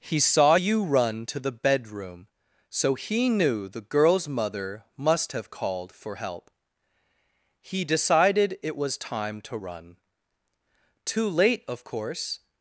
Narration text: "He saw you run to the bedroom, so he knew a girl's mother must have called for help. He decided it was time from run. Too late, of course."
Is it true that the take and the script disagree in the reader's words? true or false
true